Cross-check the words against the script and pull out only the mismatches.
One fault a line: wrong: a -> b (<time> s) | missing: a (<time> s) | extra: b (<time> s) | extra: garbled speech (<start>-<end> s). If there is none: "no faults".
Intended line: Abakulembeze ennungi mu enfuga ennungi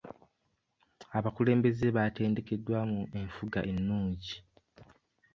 wrong: ennungi -> baatendekeddwa (1.9 s)